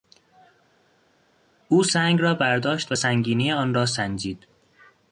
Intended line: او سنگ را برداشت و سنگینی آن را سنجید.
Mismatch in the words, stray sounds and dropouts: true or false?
false